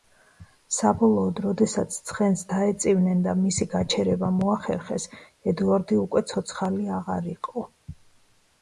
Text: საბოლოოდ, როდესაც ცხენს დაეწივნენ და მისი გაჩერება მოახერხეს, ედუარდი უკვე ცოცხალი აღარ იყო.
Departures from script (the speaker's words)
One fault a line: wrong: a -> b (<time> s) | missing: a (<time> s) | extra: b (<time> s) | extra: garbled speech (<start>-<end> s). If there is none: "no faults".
no faults